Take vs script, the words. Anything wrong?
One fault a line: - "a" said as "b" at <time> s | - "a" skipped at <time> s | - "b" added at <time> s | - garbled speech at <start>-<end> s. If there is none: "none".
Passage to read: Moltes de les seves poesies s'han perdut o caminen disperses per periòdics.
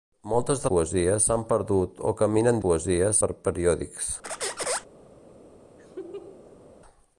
- "les seves" skipped at 0.7 s
- "disperses" said as "poesies" at 2.6 s